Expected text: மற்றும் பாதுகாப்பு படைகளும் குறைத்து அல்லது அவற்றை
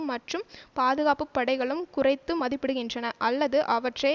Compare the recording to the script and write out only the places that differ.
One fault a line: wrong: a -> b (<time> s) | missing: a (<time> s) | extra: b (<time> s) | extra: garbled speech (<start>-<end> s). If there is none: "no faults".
extra: மதிப்பிடுகின்றன (2.4 s)